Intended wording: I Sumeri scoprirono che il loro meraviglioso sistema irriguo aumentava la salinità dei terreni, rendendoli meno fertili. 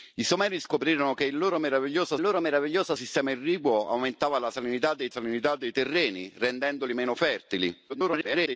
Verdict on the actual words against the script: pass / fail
fail